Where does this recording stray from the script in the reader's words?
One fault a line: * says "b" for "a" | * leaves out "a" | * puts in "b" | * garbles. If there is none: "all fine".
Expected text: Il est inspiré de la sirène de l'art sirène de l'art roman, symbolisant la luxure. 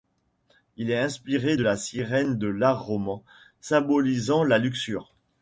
* leaves out "sirène de l'art"